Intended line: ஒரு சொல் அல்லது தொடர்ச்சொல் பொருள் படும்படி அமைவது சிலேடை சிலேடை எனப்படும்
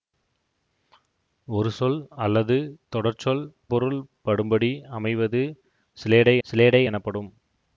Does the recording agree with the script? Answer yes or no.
yes